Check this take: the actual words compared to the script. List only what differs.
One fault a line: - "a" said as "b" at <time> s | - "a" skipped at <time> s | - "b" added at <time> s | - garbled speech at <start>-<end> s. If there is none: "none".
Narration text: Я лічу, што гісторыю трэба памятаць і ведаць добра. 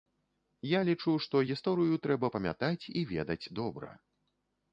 none